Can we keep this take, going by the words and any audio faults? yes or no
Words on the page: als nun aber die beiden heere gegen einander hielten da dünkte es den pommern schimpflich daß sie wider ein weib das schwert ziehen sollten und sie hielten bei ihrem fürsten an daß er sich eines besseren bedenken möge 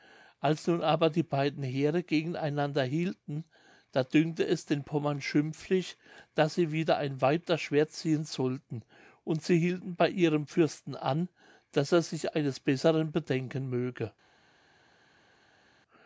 yes